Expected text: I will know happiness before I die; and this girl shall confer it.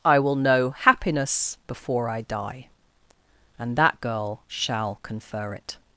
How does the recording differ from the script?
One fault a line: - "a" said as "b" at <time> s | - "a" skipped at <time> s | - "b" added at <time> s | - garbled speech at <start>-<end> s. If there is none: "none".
- "this" said as "that" at 3.8 s